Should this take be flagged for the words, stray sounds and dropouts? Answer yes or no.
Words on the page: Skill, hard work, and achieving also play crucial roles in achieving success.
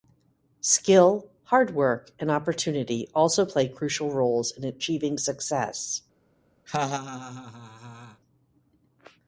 yes